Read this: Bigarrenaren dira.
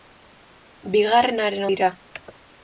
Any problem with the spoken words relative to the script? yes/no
no